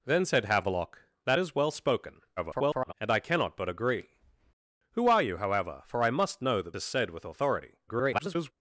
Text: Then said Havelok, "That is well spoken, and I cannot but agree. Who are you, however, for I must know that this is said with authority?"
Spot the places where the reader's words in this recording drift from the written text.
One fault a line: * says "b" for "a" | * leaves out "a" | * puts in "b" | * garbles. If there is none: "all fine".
* garbles
* leaves out "this"
* garbles